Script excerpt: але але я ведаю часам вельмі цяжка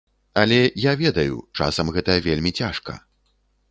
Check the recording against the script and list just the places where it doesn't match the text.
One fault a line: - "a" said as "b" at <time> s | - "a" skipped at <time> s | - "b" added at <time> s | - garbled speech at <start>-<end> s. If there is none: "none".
- "але" skipped at 0.6 s
- "гэта" added at 2.0 s